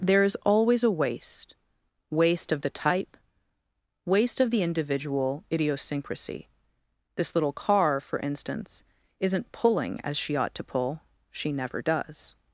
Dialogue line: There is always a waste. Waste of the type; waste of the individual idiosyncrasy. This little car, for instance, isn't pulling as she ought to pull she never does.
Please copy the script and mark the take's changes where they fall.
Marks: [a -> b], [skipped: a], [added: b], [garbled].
There is always a waste. Waste of the type; waste of the individual idiosyncrasy. This little car, for instance, isn't pulling as she ought to pull she never does.